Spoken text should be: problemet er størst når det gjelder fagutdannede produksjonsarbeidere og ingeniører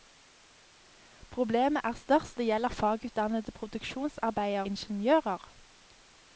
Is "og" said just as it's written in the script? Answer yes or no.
no